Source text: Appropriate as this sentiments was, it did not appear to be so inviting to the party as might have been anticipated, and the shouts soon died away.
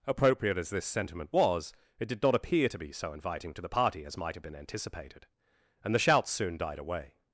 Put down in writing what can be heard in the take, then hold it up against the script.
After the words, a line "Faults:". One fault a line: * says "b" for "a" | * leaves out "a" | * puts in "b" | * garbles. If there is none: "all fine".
Appropriate as this sentiment was, it did not appear to be so inviting to the party as might have been anticipated, and the shouts soon died away.
Faults:
* says "sentiment" for "sentiments"